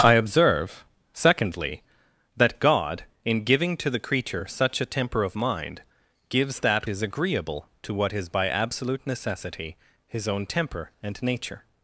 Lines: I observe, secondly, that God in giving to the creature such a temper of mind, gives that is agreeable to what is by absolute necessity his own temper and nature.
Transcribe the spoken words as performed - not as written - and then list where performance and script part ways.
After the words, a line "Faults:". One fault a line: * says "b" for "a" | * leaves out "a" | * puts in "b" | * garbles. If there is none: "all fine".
I observe, secondly, that God in giving to the creature such a temper of mind, gives that is agreeable to what is by absolute necessity his own temper and nature.
Faults:
all fine